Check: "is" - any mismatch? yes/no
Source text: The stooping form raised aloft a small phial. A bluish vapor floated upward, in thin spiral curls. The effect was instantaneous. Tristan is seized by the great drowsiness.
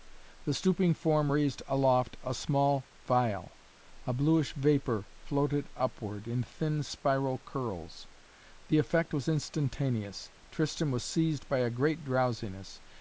yes